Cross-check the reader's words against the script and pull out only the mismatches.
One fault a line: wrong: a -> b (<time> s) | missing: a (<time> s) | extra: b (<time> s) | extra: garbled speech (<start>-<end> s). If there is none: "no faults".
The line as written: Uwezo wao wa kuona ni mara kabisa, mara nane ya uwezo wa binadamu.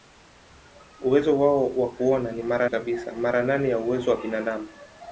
no faults